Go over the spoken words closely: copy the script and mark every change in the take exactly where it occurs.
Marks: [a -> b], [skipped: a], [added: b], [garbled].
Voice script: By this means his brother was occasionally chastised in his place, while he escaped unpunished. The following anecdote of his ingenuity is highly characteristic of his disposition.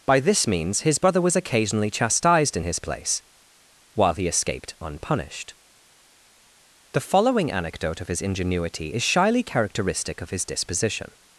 By this means his brother was occasionally chastised in his place, while he escaped unpunished. The following anecdote of his ingenuity is [highly -> shyly] characteristic of his disposition.